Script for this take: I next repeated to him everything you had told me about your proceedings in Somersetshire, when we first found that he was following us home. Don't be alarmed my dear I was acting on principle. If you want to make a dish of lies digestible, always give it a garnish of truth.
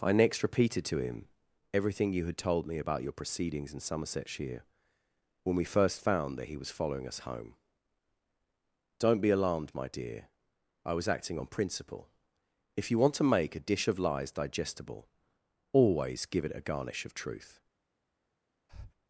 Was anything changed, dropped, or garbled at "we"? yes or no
no